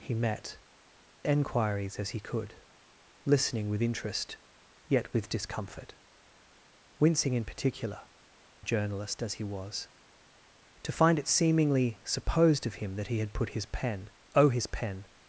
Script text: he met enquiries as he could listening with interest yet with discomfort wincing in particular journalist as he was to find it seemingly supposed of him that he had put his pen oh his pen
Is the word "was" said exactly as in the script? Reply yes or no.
yes